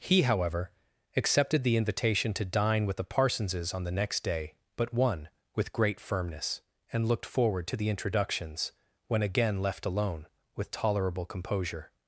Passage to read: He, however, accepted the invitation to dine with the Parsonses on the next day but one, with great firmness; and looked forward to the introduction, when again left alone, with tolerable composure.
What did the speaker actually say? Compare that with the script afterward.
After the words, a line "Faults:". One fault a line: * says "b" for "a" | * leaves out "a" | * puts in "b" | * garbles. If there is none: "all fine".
He, however, accepted the invitation to dine with the Parsonses on the next day but one, with great firmness; and looked forward to the introductions, when again left alone, with tolerable composure.
Faults:
* says "introductions" for "introduction"